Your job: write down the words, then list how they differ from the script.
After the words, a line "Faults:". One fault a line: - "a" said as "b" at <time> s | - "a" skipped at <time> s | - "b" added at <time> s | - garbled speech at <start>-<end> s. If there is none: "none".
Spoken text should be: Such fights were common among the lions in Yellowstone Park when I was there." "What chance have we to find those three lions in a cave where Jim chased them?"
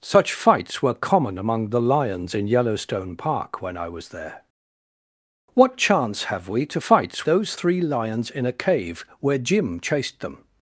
Such fights were common among the lions in Yellowstone Park when I was there." "What chance have we to fights those three lions in a cave where Jim chased them?"
Faults:
- "find" said as "fights" at 6.8 s